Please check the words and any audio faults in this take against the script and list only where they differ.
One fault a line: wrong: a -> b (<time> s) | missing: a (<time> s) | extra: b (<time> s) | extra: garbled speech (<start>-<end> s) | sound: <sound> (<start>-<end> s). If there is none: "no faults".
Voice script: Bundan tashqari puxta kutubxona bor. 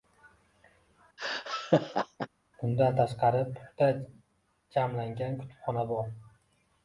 sound: laugh (1.2-2.3 s)
extra: jamlangan (4.8 s)